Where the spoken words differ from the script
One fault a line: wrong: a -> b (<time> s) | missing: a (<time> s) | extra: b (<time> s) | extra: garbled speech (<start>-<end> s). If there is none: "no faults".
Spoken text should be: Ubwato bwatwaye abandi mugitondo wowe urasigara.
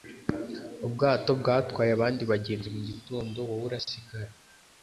extra: bagenzi (2.3 s)